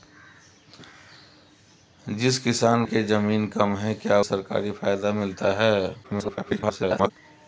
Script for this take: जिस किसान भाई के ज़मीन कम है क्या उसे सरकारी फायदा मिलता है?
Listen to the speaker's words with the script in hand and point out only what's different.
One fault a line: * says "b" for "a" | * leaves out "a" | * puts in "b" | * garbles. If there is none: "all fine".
* leaves out "भाई"
* leaves out "उसे"
* garbles